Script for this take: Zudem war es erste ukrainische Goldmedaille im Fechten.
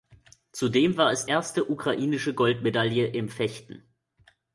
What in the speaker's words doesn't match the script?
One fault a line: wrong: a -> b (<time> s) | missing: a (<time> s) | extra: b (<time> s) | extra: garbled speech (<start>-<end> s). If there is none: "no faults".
no faults